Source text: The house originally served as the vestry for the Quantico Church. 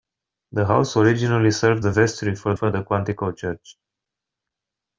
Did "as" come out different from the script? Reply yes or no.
yes